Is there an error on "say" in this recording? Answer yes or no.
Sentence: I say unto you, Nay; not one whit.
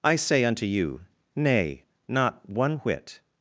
no